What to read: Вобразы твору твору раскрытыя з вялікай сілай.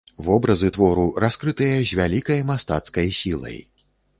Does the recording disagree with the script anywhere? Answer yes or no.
yes